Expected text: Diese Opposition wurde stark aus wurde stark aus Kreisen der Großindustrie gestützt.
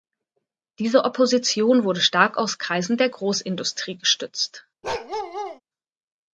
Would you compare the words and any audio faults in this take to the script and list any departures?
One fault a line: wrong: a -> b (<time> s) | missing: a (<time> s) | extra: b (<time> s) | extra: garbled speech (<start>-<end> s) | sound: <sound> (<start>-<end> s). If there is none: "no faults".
missing: wurde stark aus (2.6 s)
sound: bark (4.8-5.6 s)